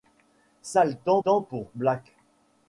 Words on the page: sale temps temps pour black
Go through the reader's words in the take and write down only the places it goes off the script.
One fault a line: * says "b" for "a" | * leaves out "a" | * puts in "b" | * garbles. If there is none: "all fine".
all fine